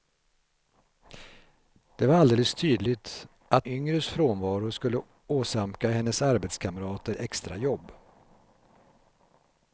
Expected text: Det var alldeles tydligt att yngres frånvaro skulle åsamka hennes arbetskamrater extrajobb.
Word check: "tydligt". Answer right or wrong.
right